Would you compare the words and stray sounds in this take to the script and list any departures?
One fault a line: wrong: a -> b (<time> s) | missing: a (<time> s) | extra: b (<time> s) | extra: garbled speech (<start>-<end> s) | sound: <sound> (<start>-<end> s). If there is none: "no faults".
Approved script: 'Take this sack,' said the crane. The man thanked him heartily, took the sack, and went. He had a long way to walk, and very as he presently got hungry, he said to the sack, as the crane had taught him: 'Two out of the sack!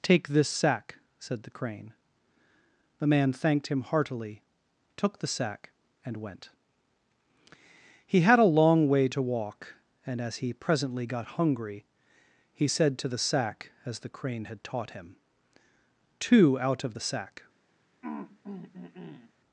missing: very (10.2 s)
sound: throat clearing (18.0-19.3 s)